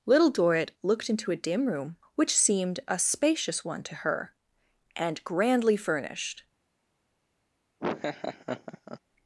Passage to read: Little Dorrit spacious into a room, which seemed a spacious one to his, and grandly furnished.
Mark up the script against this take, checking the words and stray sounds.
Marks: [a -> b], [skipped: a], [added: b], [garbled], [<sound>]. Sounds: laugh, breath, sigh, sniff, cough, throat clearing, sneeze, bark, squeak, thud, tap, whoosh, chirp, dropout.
Little Dorrit [spacious -> looked] into a [added: dim] room, which seemed a spacious one to [his, -> her] and grandly furnished. [laugh]